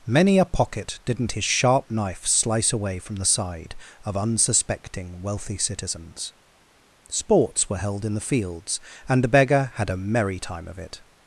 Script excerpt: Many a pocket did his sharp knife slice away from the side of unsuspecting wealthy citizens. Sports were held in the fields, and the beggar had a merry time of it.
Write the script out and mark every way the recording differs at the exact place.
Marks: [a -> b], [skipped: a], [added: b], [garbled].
Many a pocket [did -> didn't] his sharp knife slice away from the side of unsuspecting wealthy citizens. Sports were held in the fields, and the beggar had a merry time of it.